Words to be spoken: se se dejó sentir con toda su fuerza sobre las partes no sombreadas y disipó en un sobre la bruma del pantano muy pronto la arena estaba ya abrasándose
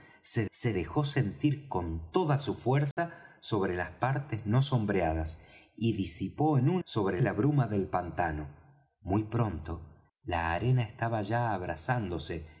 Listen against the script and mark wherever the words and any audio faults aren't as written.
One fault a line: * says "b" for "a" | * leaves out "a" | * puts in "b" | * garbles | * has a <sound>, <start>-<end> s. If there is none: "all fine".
* has a dropout, 2.9-3.0 s